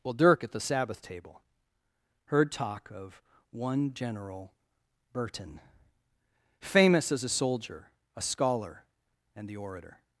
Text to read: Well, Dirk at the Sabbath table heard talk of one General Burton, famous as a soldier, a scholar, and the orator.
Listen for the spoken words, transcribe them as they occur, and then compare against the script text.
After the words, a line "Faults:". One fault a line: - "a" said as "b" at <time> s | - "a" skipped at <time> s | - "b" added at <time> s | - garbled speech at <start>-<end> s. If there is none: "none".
Well, Dirk at the Sabbath table heard talk of one General Burton, famous as a soldier, a scholar, and the orator.
Faults:
none